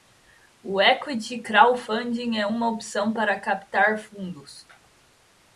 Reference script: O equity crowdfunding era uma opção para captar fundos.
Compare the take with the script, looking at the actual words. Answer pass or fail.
fail